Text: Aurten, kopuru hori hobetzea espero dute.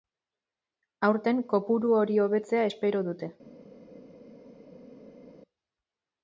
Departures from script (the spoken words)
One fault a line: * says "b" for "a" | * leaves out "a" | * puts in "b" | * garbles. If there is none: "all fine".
all fine